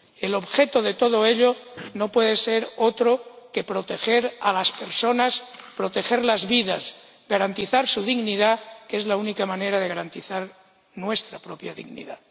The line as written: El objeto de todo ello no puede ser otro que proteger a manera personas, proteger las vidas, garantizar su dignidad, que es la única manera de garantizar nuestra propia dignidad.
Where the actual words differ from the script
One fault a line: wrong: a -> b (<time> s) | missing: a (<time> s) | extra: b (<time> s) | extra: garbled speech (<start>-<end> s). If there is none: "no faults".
wrong: manera -> las (4.5 s)